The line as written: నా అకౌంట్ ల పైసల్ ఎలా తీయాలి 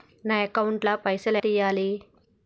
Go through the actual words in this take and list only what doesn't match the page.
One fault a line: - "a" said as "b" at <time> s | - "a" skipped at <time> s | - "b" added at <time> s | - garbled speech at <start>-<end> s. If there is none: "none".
- "ఎలా" skipped at 1.4 s